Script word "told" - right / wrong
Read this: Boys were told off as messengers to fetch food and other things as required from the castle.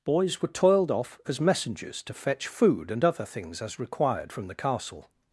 wrong